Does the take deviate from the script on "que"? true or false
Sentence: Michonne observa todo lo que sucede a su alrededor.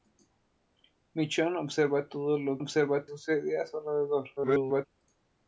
true